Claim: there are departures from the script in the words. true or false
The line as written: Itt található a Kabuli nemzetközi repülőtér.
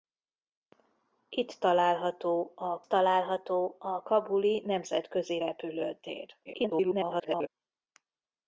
true